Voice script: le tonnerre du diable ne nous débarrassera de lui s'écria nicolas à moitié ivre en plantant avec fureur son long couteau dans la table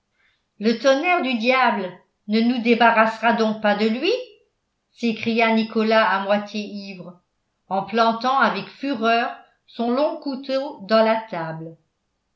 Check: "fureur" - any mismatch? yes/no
no